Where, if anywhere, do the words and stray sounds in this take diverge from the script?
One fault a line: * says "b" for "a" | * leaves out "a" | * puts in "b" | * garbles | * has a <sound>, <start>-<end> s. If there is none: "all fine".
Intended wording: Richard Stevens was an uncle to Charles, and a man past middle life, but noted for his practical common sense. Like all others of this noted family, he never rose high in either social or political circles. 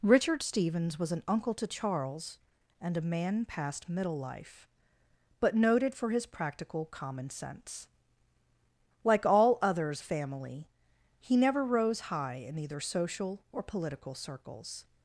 * leaves out "of this noted"